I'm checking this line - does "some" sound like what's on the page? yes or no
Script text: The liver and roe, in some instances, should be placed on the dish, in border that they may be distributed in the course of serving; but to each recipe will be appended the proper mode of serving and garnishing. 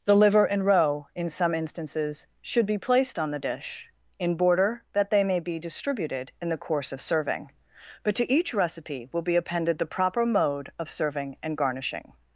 yes